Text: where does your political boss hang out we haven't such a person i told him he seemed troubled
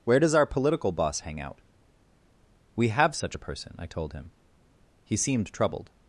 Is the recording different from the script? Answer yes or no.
yes